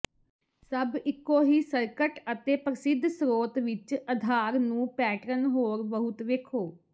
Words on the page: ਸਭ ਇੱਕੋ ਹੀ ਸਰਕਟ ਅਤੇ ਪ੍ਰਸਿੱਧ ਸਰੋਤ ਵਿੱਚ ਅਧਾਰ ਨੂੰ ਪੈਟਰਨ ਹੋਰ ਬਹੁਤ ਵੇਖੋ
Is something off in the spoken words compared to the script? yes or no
no